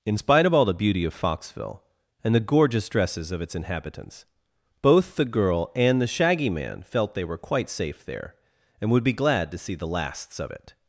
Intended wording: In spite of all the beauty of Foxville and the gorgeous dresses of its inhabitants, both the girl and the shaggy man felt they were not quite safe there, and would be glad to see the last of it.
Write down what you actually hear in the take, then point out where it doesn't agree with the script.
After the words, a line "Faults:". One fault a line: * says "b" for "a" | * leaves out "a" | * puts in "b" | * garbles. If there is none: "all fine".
In spite of all the beauty of Foxville and the gorgeous dresses of its inhabitants, both the girl and the shaggy man felt they were quite safe there, and would be glad to see the lasts of it.
Faults:
* leaves out "not"
* says "lasts" for "last"